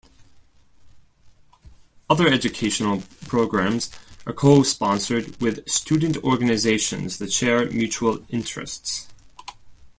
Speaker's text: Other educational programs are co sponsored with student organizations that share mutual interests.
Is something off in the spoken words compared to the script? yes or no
no